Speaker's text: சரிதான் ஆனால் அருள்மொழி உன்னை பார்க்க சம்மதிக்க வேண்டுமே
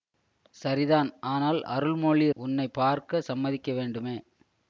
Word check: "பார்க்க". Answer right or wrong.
right